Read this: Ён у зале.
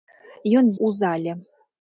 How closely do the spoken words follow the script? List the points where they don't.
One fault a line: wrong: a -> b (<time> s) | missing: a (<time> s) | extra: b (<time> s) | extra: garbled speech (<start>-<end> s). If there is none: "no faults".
no faults